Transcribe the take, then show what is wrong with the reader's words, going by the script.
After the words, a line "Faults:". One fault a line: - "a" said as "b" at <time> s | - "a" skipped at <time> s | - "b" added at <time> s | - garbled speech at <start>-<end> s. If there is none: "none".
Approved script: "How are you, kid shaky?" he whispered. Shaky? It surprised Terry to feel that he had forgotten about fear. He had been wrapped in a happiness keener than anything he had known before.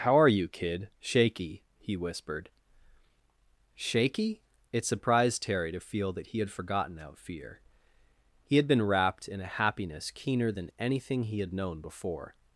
"How are you, kid shaky?" he whispered. Shaky? It surprised Terry to feel that he had forgotten out fear. He had been wrapped in a happiness keener than anything he had known before.
Faults:
- "about" said as "out" at 7.0 s